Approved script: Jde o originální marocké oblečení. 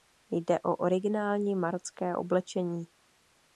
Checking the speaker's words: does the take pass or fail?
pass